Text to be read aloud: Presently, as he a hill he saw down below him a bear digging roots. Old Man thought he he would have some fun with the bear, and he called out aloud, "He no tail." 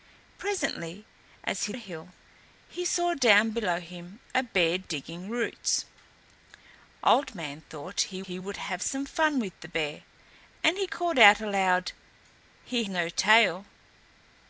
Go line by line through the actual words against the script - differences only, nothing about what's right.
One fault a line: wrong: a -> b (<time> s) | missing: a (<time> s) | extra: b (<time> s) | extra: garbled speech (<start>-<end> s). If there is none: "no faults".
no faults